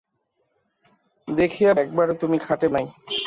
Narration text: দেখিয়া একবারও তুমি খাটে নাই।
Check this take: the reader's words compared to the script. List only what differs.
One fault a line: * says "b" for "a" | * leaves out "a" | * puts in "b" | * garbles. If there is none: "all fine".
all fine